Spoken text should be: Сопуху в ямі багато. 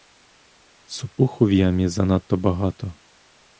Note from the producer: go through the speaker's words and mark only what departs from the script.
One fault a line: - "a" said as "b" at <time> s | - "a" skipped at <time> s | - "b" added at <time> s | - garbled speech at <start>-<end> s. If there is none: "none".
- "занадто" added at 1.9 s